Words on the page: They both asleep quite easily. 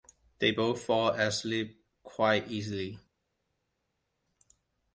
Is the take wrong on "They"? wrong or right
right